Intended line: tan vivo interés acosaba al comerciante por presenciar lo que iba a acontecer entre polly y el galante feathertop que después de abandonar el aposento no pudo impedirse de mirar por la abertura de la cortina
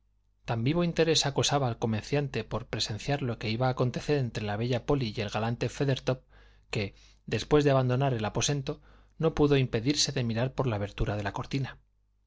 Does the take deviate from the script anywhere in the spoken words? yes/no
yes